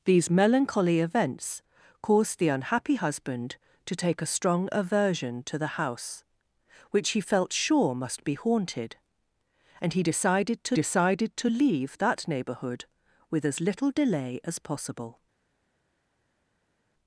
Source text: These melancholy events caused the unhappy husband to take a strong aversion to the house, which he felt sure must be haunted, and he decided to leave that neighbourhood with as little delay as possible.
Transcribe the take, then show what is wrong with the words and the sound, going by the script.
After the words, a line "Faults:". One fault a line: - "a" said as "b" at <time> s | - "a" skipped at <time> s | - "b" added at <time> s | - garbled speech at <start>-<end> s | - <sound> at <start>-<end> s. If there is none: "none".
These melancholy events caused the unhappy husband to take a strong aversion to the house, which he felt sure must be haunted, and he decided to decided to leave that neighbourhood with as little delay as possible.
Faults:
- "decided to" added at 10.7 s